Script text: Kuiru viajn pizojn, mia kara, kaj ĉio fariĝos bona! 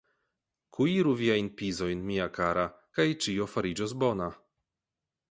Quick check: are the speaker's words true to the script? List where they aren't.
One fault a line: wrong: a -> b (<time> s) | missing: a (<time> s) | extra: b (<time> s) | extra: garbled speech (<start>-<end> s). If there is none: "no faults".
no faults